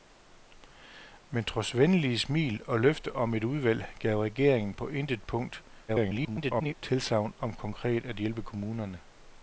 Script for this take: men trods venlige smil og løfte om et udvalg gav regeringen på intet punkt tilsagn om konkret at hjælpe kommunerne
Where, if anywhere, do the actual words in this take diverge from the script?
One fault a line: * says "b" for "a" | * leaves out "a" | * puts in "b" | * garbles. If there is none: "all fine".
* garbles